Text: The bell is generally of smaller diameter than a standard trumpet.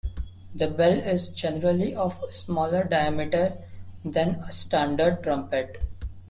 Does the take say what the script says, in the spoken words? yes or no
yes